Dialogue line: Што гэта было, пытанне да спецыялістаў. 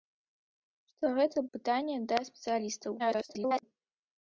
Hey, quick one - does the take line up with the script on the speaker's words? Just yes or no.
no